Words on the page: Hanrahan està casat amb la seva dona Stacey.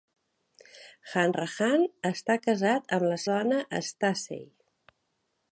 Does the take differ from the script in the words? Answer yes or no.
yes